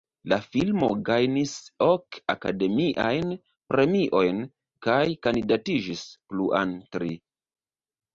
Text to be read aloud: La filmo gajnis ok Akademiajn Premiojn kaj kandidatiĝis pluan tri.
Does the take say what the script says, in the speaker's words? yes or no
yes